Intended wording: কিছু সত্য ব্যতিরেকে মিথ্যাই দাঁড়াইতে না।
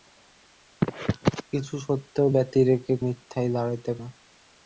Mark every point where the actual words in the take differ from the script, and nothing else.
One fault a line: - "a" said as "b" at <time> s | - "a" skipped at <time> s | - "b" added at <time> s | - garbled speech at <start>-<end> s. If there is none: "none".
none